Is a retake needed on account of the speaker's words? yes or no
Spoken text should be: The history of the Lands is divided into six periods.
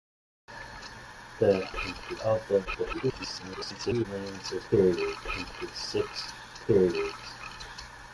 yes